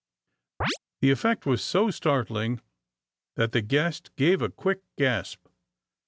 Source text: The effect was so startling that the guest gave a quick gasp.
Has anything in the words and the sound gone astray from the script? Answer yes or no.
yes